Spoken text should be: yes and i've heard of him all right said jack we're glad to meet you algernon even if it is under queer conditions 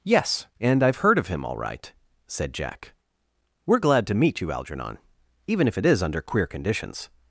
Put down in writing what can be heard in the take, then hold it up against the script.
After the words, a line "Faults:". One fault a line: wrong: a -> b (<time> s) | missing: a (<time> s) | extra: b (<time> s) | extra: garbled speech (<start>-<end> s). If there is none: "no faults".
yes and i've heard of him all right said jack we're glad to meet you algernon even if it is under queer conditions
Faults:
no faults